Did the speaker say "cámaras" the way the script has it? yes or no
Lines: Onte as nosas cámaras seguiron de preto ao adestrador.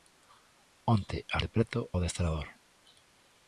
no